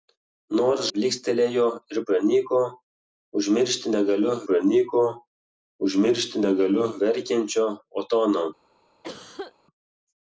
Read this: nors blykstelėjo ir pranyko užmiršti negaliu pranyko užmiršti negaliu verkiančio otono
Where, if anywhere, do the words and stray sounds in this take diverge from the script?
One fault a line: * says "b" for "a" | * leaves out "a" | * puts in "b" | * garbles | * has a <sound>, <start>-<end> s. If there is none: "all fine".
* has a cough, 9.0-9.5 s